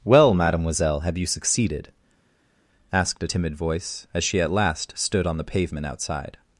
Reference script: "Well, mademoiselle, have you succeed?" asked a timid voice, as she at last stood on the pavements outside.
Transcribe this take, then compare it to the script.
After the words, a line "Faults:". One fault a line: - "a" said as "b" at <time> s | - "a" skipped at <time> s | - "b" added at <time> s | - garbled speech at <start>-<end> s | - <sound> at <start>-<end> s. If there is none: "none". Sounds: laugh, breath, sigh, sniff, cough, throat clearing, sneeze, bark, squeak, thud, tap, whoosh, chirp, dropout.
"Well, mademoiselle, have you succeeded?" asked a timid voice, as she at last stood on the pavement outside.
Faults:
- "succeed" said as "succeeded" at 1.3 s
- "pavements" said as "pavement" at 5.4 s